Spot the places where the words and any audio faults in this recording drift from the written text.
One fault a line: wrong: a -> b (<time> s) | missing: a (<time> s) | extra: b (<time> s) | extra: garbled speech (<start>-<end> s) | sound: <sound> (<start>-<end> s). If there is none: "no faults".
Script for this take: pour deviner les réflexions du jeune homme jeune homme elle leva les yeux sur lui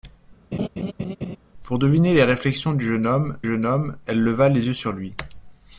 sound: laugh (0.5-1.4 s)